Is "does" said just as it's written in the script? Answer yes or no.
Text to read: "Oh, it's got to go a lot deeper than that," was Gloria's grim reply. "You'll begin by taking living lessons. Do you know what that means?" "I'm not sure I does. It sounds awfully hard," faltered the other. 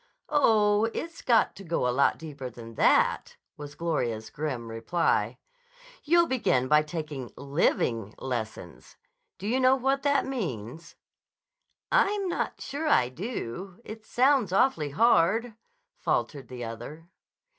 no